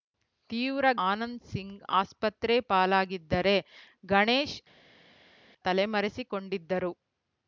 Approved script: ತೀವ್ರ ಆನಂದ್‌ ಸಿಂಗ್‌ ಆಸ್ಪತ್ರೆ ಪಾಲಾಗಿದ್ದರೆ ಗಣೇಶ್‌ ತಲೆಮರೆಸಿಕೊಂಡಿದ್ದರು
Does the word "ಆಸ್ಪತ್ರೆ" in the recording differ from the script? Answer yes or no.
no